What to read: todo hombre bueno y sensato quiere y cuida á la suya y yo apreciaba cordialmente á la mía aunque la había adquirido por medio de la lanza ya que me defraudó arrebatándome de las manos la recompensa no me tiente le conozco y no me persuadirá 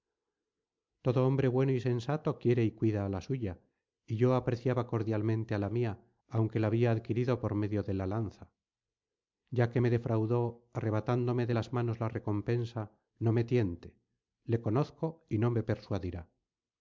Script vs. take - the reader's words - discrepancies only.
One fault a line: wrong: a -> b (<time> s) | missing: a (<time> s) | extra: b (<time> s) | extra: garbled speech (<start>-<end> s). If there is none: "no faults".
no faults